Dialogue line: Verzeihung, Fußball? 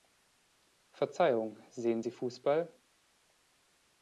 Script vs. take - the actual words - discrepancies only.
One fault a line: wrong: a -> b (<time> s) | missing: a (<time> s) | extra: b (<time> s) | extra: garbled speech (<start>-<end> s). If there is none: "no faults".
extra: sehen Sie (1.7 s)